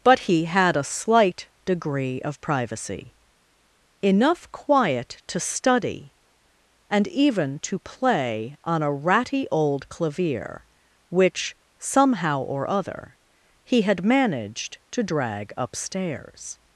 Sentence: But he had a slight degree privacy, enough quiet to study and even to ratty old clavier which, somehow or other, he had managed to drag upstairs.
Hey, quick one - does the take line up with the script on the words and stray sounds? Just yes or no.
no